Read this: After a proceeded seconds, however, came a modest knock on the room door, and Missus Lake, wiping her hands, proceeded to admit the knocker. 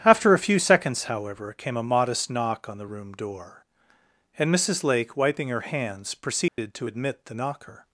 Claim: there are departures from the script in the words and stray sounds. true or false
true